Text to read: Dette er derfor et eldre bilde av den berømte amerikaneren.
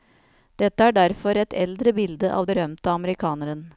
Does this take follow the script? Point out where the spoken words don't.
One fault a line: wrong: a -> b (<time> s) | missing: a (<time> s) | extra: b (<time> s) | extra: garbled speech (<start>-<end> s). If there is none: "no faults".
missing: den (2.5 s)